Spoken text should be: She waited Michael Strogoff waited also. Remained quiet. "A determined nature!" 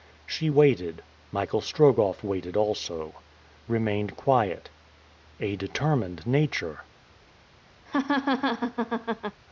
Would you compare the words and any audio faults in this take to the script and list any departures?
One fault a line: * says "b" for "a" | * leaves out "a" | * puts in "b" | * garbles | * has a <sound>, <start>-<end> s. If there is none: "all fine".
* has a laugh, 7.9-9.4 s